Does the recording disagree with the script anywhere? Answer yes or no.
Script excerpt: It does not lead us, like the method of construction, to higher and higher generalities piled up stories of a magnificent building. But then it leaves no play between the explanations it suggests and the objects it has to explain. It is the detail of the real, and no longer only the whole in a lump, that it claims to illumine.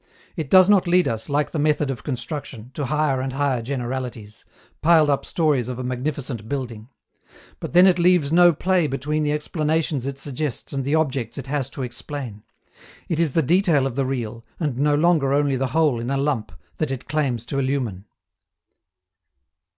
no